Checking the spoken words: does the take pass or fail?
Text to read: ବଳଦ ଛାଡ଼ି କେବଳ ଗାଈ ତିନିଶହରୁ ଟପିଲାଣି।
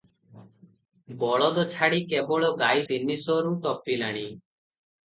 pass